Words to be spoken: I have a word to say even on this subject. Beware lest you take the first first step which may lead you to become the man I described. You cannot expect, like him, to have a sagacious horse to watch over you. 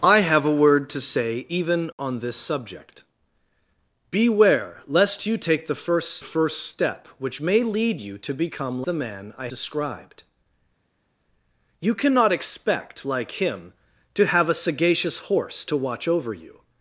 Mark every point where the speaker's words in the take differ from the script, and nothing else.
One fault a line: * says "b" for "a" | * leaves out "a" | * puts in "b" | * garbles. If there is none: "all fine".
all fine